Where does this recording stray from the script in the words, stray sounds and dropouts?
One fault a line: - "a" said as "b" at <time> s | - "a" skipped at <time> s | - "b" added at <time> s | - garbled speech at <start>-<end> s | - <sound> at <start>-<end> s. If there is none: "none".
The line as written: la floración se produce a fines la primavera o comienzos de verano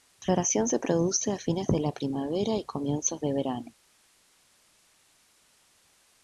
- "de" added at 1.7 s
- "o" said as "y" at 2.5 s